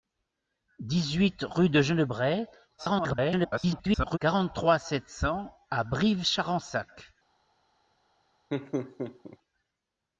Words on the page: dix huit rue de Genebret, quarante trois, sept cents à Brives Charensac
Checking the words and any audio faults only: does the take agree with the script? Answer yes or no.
no